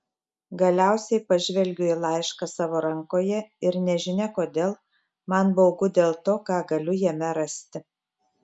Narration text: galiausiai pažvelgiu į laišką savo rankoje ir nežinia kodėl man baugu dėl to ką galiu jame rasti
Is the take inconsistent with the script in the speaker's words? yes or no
no